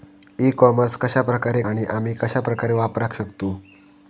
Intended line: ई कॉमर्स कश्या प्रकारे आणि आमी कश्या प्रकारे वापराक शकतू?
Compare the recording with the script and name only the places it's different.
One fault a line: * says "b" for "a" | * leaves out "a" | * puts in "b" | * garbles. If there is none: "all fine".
all fine